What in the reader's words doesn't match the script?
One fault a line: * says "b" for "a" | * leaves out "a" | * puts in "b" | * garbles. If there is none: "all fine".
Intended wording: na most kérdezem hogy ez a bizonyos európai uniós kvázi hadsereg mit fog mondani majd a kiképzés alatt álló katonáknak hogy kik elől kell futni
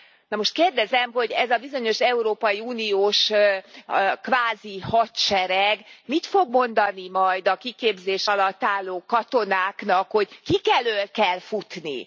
all fine